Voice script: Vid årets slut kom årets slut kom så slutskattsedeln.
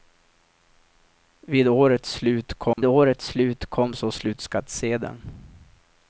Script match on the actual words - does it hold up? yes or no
yes